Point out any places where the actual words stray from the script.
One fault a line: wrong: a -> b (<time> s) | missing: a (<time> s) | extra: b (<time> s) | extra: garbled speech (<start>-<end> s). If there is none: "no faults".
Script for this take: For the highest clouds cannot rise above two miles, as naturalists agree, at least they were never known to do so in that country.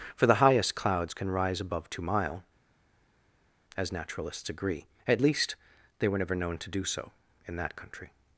wrong: cannot -> can (1.1 s)
wrong: miles -> mile (2.0 s)